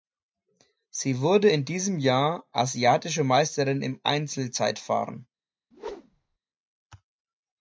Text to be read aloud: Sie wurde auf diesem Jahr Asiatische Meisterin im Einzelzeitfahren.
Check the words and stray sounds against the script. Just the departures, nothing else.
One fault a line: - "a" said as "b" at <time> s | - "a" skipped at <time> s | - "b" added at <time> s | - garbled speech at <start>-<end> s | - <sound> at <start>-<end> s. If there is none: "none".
- "auf" said as "in" at 1.5 s
- whoosh at 5.7-6.4 s